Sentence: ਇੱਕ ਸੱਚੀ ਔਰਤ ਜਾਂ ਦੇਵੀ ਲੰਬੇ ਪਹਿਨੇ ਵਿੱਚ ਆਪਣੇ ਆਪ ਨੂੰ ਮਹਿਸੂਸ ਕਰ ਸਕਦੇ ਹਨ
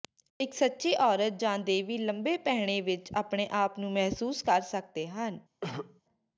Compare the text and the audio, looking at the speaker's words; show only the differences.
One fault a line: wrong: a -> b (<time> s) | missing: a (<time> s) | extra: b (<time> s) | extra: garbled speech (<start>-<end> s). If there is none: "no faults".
no faults